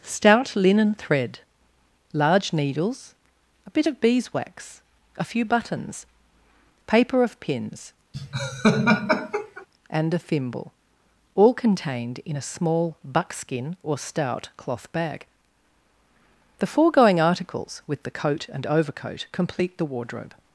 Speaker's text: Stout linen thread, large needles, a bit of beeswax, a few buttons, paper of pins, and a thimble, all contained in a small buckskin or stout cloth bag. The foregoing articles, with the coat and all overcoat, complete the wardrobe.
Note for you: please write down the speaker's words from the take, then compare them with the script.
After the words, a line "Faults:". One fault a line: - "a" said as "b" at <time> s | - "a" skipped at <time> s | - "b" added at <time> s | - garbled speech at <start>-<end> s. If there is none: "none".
Stout linen thread, large needles, a bit of beeswax, a few buttons, paper of pins, and a thimble, all contained in a small buckskin or stout cloth bag. The foregoing articles, with the coat and overcoat, complete the wardrobe.
Faults:
- "all" skipped at 18.7 s